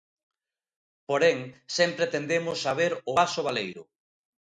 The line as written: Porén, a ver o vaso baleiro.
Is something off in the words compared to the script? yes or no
yes